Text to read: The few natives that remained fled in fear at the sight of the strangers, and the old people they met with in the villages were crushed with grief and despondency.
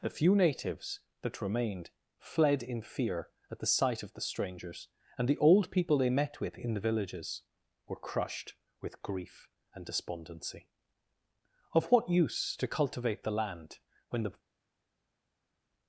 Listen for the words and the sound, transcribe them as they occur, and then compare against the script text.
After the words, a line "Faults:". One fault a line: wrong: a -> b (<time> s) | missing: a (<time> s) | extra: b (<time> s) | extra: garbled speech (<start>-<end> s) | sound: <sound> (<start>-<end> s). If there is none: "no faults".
The few natives that remained fled in fear at the sight of the strangers, and the old people they met with in the villages were crushed with grief and despondency. Of what use to cultivate the land when the
Faults:
extra: Of what use to cultivate the land when the (11.7 s)